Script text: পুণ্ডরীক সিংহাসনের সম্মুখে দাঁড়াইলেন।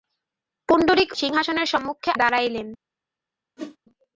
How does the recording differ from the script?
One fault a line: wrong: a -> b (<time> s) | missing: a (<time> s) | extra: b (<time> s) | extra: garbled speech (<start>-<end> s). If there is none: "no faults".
no faults